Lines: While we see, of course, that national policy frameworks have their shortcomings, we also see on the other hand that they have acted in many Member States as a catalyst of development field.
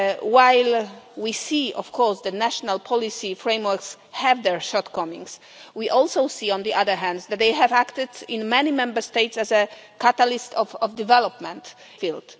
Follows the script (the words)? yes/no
yes